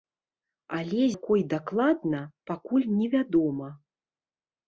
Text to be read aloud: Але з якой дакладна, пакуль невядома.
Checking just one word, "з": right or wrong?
wrong